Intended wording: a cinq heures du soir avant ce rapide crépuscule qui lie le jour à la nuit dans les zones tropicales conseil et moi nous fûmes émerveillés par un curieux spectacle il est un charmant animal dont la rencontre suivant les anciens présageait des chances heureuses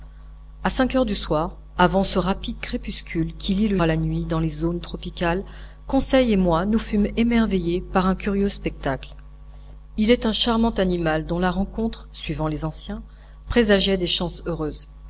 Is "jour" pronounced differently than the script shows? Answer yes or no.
yes